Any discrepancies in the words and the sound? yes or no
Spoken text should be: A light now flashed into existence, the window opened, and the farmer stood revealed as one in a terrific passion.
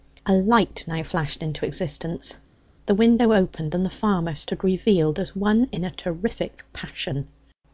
no